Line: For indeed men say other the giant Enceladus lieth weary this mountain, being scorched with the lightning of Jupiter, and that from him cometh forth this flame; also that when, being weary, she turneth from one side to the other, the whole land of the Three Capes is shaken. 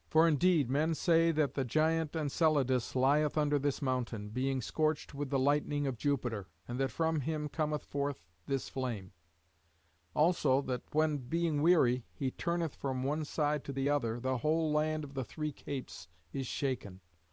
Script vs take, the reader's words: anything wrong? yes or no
yes